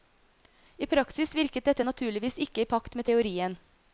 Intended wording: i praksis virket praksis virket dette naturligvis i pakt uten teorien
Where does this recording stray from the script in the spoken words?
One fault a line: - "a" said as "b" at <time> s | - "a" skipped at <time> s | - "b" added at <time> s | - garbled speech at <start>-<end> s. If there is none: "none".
- "praksis virket" skipped at 1.7 s
- "ikke" added at 2.5 s
- "uten" said as "med" at 3.0 s